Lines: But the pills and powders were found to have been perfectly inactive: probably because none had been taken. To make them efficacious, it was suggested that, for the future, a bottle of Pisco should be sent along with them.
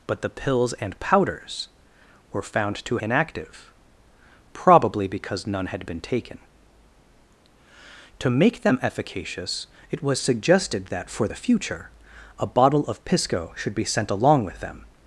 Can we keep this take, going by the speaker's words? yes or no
no